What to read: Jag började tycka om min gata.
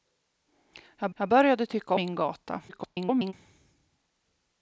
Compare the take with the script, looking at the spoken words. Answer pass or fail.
fail